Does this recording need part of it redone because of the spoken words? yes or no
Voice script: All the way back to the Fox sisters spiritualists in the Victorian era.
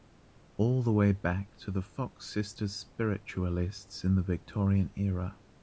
no